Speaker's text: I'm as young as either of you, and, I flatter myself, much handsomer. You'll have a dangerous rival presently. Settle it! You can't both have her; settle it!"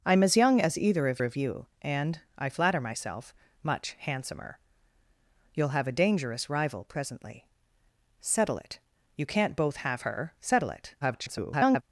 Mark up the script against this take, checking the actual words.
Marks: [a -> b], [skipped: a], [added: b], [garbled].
I'm as young as either of [added: of] you, and, I flatter myself, much handsomer. You'll have a dangerous rival presently. Settle it! You can't both have her; settle it!" [garbled]